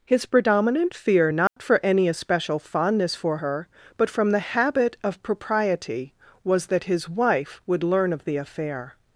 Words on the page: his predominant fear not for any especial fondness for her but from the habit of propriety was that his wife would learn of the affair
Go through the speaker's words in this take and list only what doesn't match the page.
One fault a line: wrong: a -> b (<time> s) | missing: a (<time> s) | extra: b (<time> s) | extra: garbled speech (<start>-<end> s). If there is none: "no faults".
no faults